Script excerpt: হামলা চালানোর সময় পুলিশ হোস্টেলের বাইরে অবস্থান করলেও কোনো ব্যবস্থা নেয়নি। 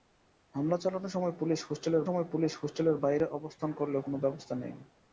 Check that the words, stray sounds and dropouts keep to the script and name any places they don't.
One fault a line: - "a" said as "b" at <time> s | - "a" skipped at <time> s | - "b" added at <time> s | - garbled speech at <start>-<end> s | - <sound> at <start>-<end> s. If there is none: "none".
- "সময় পুলিশ হোস্টেলের" added at 2.1 s